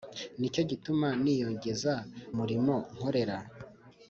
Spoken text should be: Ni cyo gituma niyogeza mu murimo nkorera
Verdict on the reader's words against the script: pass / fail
fail